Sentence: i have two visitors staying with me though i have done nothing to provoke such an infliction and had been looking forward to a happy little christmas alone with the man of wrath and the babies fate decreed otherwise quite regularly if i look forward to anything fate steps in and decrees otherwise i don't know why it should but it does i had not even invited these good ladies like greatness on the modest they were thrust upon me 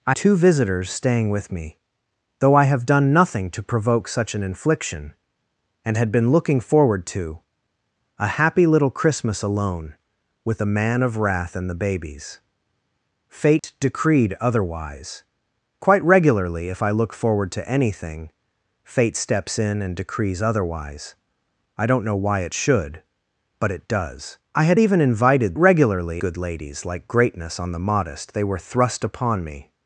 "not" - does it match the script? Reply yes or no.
no